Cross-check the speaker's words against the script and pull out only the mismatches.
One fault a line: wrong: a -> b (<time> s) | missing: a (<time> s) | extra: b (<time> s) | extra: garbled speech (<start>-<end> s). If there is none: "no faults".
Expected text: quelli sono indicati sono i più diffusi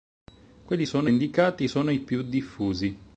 no faults